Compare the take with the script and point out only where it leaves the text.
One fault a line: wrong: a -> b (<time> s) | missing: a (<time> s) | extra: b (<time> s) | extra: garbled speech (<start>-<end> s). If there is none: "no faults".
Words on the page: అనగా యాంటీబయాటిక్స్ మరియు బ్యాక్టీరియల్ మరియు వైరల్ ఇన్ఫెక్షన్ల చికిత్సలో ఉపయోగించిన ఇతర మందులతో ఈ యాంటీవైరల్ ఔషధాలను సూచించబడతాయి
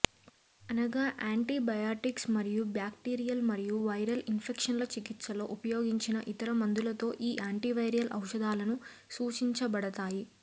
no faults